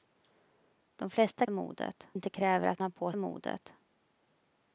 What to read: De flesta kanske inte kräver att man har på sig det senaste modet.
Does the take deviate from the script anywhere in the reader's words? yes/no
yes